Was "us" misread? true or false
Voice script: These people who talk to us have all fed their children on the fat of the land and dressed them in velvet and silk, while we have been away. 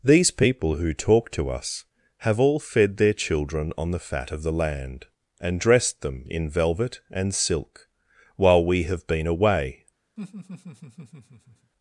false